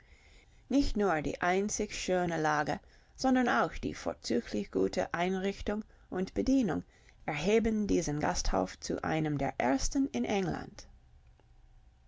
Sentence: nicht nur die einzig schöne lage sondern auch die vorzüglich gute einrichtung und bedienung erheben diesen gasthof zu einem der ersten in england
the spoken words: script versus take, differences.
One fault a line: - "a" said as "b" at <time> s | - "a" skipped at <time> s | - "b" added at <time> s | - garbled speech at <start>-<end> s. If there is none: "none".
none